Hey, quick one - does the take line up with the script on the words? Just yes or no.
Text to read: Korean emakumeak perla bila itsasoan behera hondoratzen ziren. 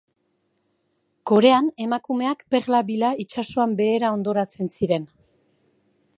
yes